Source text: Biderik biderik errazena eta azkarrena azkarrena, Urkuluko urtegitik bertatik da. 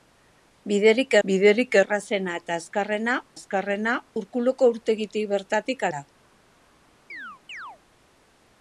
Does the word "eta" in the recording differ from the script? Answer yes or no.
no